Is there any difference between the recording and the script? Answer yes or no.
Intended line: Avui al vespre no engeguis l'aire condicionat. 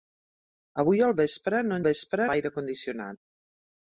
yes